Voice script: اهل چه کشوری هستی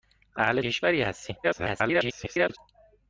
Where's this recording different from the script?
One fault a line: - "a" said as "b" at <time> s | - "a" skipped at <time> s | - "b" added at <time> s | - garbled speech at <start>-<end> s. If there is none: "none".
- "چه" skipped at 0.6 s
- garbled speech at 1.4-2.6 s